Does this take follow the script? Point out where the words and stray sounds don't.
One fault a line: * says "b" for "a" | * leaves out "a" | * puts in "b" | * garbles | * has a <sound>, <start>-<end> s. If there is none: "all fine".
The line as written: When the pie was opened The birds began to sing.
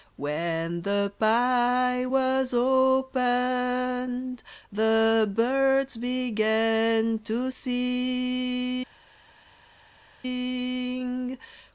all fine